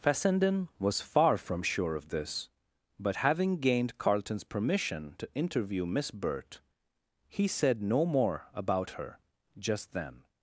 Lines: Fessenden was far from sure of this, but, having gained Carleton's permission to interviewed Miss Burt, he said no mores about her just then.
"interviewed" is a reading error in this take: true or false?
true